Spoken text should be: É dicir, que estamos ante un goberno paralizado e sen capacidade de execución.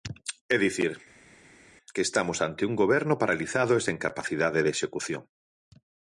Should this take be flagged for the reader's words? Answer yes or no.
no